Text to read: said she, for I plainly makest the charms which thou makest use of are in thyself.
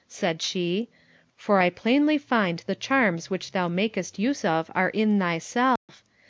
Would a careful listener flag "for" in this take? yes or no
no